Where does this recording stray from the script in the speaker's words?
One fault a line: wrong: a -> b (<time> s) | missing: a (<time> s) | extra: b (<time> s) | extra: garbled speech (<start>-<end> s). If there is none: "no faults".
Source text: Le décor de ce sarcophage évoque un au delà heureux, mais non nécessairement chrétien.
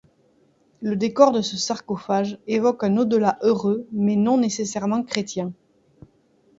no faults